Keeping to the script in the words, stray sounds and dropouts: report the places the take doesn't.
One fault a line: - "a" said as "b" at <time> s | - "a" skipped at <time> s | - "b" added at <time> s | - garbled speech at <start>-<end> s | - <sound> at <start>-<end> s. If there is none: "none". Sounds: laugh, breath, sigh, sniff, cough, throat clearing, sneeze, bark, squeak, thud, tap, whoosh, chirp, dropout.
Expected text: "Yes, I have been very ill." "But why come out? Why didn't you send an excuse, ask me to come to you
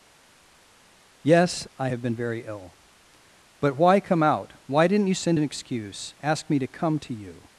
none